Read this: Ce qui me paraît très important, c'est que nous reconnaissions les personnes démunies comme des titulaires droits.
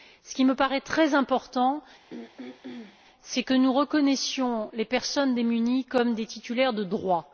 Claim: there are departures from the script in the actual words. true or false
true